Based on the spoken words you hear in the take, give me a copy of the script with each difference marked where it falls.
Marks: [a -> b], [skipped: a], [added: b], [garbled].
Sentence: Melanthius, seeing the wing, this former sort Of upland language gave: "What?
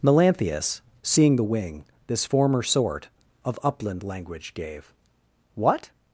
Melanthius, seeing the wing, this former sort Of upland language gave: "What?